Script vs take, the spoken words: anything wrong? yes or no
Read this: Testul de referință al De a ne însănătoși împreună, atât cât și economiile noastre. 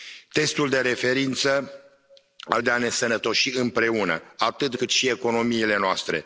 no